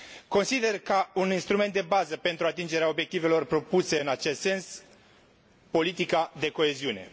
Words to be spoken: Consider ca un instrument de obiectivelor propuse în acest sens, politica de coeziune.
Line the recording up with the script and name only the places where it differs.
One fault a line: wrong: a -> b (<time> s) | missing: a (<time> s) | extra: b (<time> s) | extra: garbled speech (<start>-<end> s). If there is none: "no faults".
extra: bază pentru atingerea (1.8 s)